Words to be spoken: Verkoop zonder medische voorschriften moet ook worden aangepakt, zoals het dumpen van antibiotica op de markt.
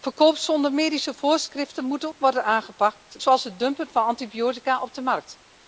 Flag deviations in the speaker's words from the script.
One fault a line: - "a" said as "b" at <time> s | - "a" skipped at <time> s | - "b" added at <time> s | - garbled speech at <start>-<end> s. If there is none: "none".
none